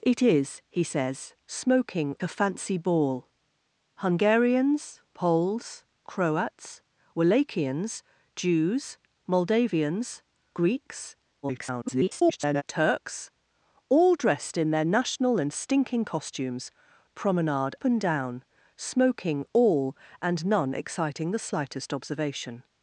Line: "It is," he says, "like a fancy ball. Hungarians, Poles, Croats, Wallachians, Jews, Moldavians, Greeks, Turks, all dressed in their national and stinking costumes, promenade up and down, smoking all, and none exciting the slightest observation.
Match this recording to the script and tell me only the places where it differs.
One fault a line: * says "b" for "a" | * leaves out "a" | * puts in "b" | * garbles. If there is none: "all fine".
* says "smoking" for "like"
* garbles
* leaves out "up"